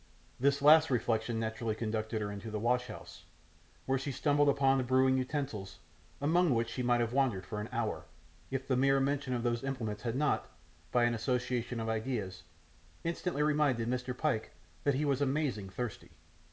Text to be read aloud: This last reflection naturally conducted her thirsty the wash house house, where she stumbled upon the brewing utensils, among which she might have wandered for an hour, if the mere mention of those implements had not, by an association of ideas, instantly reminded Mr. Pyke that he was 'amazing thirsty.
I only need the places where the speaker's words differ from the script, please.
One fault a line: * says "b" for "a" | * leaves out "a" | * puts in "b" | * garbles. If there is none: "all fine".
* says "into" for "thirsty"
* leaves out "house"